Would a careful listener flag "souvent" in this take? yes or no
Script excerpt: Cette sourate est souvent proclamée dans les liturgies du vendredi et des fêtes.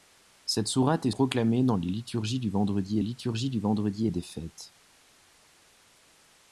yes